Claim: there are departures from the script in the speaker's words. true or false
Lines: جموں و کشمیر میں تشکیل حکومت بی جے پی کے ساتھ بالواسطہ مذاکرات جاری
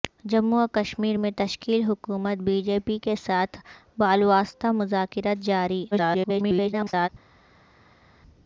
true